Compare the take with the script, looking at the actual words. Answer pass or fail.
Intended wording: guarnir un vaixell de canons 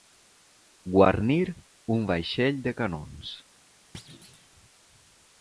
pass